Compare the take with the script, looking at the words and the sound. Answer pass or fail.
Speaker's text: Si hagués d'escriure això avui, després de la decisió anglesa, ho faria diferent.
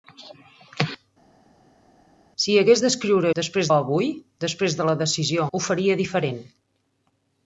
fail